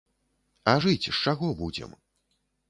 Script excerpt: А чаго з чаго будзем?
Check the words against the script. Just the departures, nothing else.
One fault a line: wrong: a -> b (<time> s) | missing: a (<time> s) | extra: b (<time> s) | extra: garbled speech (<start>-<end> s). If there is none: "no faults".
wrong: чаго -> жыць (0.8 s)